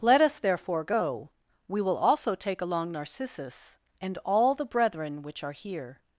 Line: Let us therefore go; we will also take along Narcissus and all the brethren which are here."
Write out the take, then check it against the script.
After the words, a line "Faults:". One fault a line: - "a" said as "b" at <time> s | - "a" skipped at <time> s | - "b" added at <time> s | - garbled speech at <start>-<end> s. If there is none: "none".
Let us therefore go; we will also take along Narcissus and all the brethren which are here."
Faults:
none